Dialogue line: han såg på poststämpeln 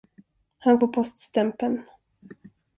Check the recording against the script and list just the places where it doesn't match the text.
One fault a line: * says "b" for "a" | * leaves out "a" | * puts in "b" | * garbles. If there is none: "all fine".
* leaves out "såg"